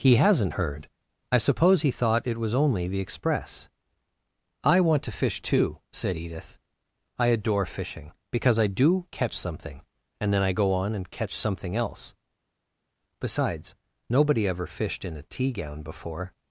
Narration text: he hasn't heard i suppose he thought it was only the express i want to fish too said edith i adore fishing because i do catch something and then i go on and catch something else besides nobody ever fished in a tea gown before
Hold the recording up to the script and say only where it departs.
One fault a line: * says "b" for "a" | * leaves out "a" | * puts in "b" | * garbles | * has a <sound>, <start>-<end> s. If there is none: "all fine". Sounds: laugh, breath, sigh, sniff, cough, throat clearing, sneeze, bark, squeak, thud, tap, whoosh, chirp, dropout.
all fine